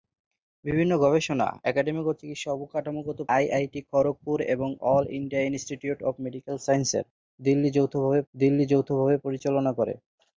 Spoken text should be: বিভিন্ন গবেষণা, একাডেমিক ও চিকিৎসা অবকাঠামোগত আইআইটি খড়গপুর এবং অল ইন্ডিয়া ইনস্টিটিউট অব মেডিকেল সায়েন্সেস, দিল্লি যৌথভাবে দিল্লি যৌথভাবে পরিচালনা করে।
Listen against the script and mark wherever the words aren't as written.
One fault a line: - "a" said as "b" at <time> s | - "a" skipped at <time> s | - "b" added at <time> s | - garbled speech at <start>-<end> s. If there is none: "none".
none